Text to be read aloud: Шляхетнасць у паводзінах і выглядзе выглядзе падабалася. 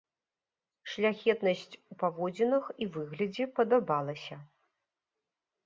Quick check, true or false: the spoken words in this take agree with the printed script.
false